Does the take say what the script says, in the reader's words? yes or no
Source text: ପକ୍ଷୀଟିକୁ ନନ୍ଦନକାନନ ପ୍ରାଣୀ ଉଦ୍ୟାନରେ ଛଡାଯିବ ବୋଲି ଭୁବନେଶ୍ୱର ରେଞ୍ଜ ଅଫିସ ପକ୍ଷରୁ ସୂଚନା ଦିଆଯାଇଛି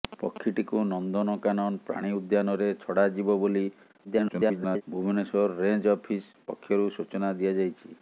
no